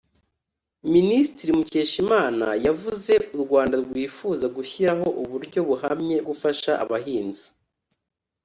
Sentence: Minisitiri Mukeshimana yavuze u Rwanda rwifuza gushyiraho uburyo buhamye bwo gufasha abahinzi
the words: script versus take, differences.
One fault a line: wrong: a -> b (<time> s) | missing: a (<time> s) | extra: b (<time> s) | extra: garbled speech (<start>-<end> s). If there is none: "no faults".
missing: bwo (6.2 s)